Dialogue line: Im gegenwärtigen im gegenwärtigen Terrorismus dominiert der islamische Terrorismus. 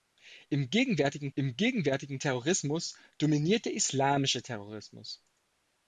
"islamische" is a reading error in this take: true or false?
false